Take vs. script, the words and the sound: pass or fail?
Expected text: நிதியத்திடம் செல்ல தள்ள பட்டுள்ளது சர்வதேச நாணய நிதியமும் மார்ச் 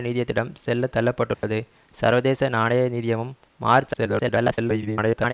fail